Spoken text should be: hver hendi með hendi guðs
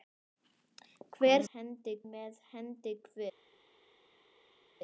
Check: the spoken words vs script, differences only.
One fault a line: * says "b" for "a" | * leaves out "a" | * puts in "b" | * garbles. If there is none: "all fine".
all fine